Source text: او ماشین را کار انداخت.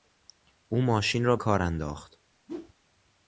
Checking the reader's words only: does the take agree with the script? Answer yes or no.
yes